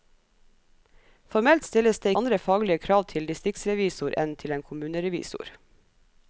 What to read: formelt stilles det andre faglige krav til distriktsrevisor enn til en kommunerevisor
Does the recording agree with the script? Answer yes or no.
yes